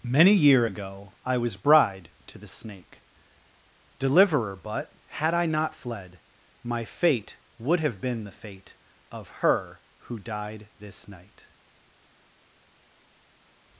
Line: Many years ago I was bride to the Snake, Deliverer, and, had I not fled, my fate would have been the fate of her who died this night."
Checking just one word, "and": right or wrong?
wrong